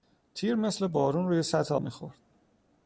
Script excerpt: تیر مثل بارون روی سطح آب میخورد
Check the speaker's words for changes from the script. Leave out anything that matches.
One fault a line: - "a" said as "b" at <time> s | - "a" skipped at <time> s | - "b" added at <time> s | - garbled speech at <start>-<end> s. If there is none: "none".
- "آب" skipped at 1.8 s